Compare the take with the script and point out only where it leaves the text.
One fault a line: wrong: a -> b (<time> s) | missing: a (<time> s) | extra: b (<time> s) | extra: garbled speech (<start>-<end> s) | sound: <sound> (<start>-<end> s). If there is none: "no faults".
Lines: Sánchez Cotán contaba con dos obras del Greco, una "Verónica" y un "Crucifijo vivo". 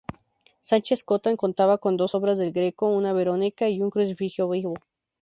no faults